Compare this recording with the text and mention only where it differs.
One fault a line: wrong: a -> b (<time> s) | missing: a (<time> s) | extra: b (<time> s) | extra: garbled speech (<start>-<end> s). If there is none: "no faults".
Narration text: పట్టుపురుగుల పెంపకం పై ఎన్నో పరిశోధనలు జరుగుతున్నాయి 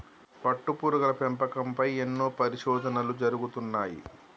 no faults